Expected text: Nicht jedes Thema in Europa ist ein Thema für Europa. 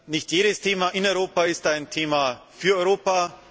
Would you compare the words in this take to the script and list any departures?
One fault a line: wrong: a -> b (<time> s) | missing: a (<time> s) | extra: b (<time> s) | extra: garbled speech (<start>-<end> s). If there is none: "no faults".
no faults